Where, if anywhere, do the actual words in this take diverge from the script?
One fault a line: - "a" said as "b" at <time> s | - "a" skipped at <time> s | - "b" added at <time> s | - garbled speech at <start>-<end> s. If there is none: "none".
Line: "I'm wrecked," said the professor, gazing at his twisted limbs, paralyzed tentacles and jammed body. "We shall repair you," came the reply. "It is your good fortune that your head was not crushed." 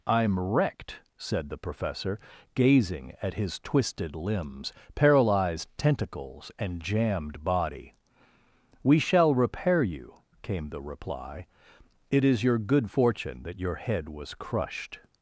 - "not" skipped at 14.3 s